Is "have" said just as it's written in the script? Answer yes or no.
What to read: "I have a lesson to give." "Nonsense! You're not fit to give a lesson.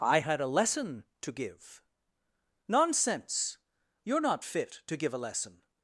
no